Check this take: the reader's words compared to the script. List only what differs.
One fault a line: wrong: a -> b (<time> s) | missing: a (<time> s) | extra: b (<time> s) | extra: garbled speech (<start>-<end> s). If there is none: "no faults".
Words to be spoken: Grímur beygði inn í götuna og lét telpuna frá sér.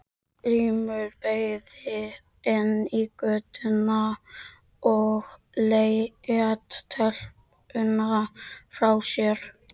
no faults